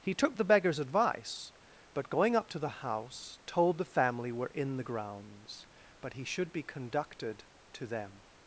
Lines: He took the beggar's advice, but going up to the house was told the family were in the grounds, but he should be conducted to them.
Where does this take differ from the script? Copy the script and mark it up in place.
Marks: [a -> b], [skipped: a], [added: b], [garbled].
He took the beggar's advice, but going up to the house [skipped: was] told the family were in the grounds, but he should be conducted to them.